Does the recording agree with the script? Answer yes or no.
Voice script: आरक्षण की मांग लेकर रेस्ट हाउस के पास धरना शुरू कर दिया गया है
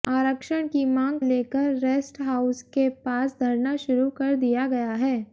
yes